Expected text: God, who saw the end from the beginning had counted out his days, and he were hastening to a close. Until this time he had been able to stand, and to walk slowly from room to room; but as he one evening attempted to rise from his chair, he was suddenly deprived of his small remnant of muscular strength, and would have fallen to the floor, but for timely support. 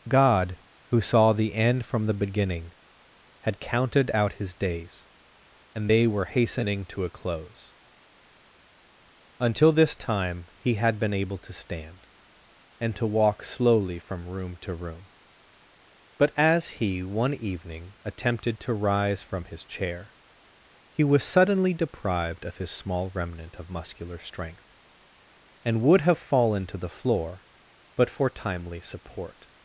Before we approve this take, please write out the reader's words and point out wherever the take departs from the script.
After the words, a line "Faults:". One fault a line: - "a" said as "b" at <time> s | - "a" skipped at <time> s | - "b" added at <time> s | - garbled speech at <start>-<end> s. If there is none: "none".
God, who saw the end from the beginning had counted out his days, and they were hastening to a close. Until this time he had been able to stand, and to walk slowly from room to room; but as he one evening attempted to rise from his chair, he was suddenly deprived of his small remnant of muscular strength, and would have fallen to the floor, but for timely support.
Faults:
- "he" said as "they" at 5.9 s